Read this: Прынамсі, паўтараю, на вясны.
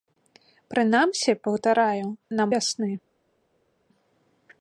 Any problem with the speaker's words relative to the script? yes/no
no